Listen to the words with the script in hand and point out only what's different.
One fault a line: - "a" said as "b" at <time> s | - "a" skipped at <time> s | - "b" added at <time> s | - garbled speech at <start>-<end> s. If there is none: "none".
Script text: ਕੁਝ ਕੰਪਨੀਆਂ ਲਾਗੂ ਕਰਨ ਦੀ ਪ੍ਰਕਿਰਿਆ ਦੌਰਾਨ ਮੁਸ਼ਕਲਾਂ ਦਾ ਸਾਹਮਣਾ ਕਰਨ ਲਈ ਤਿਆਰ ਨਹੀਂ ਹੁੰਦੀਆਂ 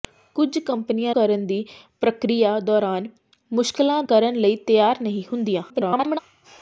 - "ਲਾਗੂ" skipped at 1.1 s
- "ਦਾ ਸਾਹਮਣਾ" skipped at 4.0 s
- garbled speech at 5.7-6.2 s